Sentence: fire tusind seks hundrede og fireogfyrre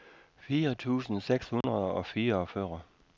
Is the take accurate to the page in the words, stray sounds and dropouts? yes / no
no